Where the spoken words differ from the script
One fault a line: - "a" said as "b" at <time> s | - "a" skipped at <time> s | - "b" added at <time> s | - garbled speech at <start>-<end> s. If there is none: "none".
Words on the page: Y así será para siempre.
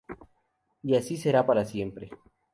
none